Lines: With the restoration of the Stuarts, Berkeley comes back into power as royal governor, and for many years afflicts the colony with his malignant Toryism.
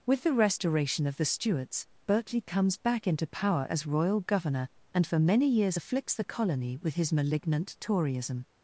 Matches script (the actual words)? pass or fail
pass